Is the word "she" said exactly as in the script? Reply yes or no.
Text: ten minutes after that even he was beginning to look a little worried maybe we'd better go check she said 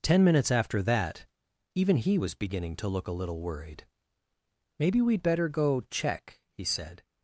no